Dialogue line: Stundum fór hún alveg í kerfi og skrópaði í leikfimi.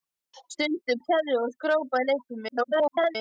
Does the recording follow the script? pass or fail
fail